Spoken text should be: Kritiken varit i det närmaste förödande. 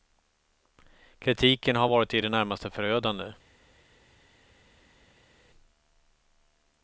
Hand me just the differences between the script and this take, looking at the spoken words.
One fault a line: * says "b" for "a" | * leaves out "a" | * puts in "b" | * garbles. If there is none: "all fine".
* puts in "har"